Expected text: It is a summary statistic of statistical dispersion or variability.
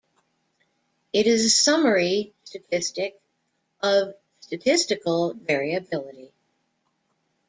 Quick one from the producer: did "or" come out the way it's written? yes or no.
no